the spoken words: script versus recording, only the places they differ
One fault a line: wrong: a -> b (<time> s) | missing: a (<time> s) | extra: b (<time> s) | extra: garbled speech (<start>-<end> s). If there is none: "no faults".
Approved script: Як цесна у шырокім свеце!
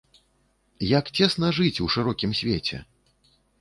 extra: жыць (1.6 s)